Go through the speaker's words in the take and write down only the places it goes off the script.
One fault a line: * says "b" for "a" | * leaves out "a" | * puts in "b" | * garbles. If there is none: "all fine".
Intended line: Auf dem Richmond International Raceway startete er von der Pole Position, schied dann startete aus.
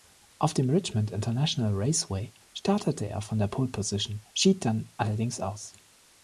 * says "allerdings" for "startete"